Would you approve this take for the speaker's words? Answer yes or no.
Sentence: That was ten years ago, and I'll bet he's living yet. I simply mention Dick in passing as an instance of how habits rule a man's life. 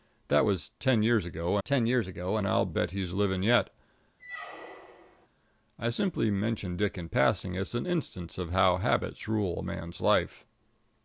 no